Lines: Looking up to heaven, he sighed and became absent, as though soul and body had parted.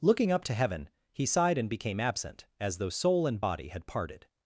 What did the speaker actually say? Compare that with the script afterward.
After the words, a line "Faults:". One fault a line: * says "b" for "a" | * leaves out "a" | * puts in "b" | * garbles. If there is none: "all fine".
Looking up to heaven, he sighed and became absent, as though soul and body had parted.
Faults:
all fine